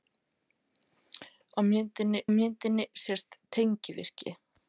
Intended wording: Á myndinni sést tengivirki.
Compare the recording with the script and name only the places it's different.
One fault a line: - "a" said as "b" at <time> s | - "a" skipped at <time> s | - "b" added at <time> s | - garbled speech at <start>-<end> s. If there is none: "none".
- "myndinni" added at 2.4 s